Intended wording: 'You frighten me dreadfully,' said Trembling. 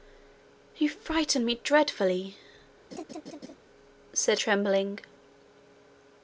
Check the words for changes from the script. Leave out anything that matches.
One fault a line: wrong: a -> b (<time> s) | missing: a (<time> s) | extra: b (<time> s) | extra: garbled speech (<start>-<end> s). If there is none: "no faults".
no faults